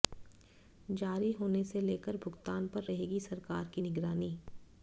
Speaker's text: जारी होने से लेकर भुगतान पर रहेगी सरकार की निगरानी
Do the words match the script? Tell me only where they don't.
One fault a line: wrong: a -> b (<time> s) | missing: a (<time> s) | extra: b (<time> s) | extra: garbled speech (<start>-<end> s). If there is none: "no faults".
no faults